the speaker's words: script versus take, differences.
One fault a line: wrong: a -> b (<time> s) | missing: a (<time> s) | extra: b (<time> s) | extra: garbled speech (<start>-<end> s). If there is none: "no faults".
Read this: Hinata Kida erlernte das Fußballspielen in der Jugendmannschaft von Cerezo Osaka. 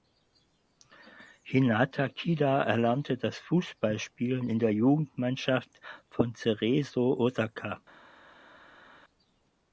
no faults